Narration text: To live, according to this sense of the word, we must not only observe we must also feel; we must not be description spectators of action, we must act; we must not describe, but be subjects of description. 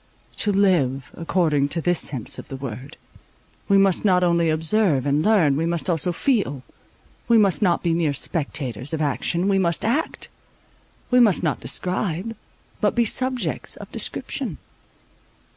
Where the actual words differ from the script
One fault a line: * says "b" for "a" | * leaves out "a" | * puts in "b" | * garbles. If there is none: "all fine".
* puts in "and learn"
* says "mere" for "description"